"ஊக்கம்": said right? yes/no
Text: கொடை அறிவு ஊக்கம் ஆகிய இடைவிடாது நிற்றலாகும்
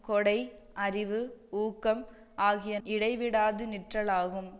yes